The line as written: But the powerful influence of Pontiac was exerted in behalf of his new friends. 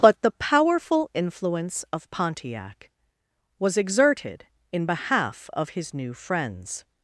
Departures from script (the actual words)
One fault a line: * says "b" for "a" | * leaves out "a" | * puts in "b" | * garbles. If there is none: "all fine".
all fine